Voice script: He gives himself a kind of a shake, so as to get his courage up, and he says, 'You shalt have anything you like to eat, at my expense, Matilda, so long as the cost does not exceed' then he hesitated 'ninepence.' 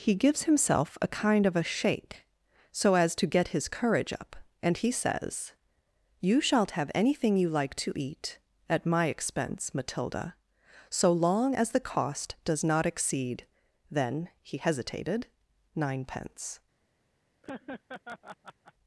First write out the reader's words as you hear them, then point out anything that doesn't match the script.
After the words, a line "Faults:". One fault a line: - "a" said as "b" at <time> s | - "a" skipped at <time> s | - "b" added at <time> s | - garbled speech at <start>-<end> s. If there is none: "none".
He gives himself a kind of a shake, so as to get his courage up, and he says, 'You shalt have anything you like to eat, at my expense, Matilda, so long as the cost does not exceed' then he hesitated 'ninepence.'
Faults:
none